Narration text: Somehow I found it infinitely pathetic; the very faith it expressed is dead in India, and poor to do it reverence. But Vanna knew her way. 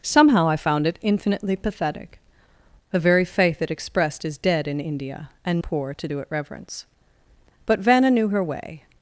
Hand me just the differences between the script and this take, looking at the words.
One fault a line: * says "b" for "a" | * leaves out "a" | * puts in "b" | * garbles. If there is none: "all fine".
all fine